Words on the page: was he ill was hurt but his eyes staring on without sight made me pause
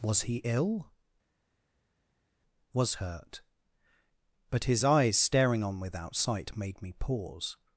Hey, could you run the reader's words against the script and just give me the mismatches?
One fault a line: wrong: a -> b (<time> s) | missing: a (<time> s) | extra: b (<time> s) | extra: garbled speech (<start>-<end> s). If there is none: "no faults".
no faults